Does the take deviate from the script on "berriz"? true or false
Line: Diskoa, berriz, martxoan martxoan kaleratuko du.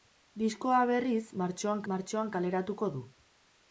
false